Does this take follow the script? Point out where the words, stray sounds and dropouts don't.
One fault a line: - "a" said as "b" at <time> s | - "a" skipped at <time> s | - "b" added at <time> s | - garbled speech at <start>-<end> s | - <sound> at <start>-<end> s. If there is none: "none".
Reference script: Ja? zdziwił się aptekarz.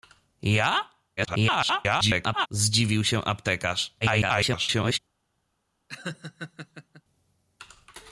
- garbled speech at 1.2-2.5 s
- garbled speech at 4.0-5.0 s
- laugh at 5.9-7.0 s